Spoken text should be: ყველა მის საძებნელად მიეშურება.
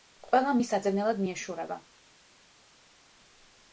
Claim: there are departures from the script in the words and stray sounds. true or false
false